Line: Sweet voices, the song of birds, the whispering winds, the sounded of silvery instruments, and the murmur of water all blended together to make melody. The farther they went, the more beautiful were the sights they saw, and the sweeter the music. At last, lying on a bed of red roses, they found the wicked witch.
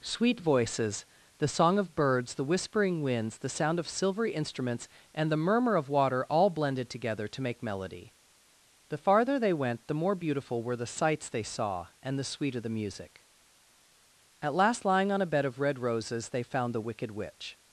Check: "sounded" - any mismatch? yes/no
yes